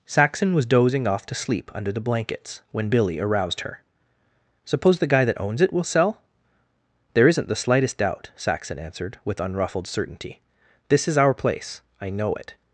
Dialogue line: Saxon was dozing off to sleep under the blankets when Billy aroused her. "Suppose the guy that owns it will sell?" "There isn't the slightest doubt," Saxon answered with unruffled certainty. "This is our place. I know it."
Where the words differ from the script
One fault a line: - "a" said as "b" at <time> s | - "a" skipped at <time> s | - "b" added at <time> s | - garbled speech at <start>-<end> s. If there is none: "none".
none